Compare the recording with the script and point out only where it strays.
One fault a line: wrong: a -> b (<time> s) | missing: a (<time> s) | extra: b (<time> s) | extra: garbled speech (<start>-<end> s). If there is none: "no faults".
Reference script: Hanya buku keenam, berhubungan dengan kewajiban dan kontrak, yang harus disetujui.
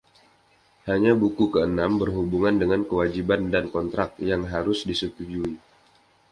no faults